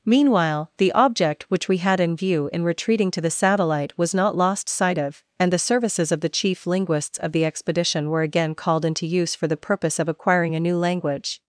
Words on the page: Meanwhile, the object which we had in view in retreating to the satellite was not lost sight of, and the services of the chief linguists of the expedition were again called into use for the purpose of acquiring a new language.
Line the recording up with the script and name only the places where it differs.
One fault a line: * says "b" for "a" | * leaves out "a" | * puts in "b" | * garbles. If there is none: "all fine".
all fine